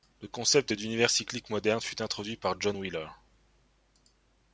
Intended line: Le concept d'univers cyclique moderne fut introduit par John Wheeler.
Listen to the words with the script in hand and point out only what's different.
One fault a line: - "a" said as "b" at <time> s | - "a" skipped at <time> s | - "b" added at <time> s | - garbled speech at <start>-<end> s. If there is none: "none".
none